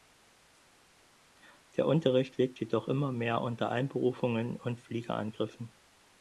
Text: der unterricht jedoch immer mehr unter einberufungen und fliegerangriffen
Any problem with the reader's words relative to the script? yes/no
yes